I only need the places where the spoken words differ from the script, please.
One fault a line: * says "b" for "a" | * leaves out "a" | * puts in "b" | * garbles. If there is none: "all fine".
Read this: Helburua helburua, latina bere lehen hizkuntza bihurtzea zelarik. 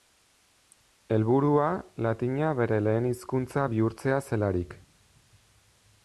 * leaves out "helburua"